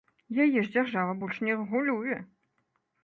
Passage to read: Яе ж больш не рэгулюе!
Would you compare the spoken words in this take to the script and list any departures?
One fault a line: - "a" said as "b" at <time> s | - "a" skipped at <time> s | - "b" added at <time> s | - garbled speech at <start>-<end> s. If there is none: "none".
- "дзяржава" added at 0.8 s